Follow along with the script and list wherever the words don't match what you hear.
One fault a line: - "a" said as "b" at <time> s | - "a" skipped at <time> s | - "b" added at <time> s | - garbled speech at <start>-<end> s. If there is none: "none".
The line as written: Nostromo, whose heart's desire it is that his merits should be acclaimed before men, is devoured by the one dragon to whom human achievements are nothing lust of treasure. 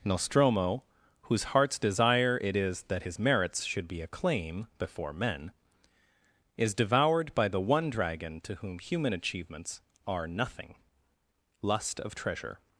- "acclaimed" said as "acclaim" at 4.0 s